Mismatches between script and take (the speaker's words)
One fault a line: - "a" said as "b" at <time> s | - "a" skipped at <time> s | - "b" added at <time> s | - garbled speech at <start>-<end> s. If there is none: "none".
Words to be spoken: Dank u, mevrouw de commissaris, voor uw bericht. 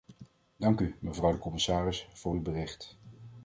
none